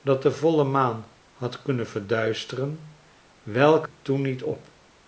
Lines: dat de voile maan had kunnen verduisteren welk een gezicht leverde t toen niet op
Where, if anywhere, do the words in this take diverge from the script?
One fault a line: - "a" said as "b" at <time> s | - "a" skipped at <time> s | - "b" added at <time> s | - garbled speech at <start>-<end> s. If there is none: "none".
- "een gezicht leverde" skipped at 3.9 s